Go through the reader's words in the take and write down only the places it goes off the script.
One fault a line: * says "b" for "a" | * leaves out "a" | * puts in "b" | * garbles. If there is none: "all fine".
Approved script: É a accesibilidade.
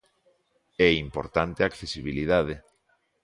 * puts in "importante"